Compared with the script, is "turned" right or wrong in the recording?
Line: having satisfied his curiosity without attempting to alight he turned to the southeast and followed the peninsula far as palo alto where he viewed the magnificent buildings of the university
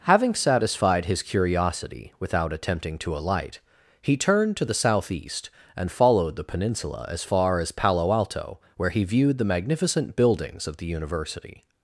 right